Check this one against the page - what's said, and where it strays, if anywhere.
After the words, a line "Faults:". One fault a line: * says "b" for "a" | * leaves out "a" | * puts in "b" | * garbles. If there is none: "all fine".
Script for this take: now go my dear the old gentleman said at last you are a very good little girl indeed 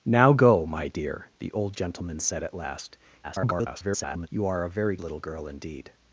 now go my dear the old gentleman said at last [garbled] you are a very little girl indeed
Faults:
* garbles
* leaves out "good"